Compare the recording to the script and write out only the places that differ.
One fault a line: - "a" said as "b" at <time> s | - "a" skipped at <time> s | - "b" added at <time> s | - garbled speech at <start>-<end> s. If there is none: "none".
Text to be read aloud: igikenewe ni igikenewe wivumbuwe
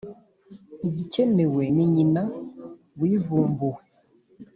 - "igikenewe" said as "nyina" at 1.9 s